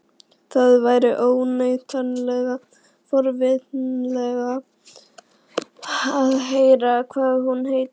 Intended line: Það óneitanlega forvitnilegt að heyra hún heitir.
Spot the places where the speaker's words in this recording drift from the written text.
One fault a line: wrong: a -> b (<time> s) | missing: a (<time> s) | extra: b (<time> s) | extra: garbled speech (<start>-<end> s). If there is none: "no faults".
extra: væri (0.8 s)
extra: hvað (7.1 s)